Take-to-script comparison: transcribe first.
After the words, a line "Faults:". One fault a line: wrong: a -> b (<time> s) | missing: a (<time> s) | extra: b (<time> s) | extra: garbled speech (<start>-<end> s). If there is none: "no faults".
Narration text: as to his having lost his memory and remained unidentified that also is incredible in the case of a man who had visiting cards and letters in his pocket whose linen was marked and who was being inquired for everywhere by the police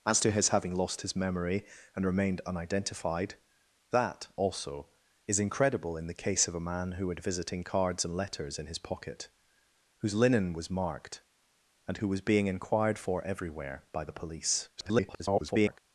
as to his having lost his memory and remained unidentified that also is incredible in the case of a man who had visiting cards and letters in his pocket whose linen was marked and who was being inquired for everywhere by the police [garbled]
Faults:
extra: garbled speech (14.8-15.8 s)